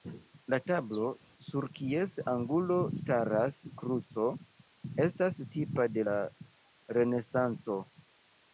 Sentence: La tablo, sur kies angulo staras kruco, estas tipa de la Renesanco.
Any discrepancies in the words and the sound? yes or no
no